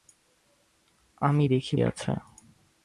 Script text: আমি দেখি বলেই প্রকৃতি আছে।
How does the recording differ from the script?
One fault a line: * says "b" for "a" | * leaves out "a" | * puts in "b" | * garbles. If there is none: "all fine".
* leaves out "বলেই প্রকৃতি"